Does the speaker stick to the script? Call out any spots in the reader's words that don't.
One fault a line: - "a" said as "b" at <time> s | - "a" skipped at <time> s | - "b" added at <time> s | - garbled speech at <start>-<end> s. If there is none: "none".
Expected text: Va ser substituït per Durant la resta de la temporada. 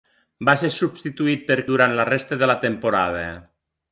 none